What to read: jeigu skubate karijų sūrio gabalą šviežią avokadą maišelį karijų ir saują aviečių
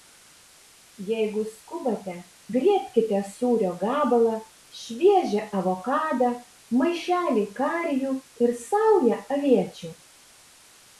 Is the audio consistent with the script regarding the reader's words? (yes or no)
no